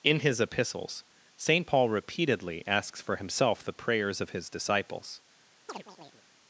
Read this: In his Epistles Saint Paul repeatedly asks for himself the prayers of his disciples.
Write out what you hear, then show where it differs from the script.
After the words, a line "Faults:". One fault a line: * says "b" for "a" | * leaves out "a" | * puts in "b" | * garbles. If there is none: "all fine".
In his Epistles Saint Paul repeatedly asks for himself the prayers of his disciples.
Faults:
all fine